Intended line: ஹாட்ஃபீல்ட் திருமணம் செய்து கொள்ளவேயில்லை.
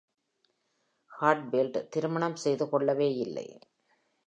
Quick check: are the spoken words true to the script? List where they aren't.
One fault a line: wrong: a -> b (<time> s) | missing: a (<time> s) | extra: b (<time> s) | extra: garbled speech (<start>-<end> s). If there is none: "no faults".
no faults